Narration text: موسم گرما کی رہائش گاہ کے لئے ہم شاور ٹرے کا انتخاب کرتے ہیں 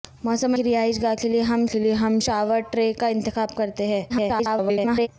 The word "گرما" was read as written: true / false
false